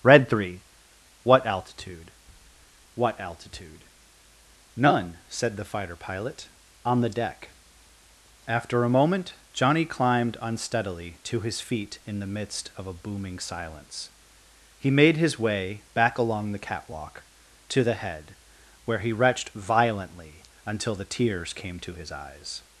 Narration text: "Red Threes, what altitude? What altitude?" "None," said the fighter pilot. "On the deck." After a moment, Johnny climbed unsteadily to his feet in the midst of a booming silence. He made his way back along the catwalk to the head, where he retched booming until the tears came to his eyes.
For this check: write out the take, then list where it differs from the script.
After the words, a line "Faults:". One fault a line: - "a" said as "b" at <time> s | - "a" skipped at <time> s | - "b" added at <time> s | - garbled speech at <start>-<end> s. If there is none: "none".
"Red Three, what altitude? What altitude?" "None," said the fighter pilot. "On the deck." After a moment, Johnny climbed unsteadily to his feet in the midst of a booming silence. He made his way back along the catwalk to the head, where he retched violently until the tears came to his eyes.
Faults:
- "Threes" said as "Three" at 0.3 s
- "booming" said as "violently" at 19.5 s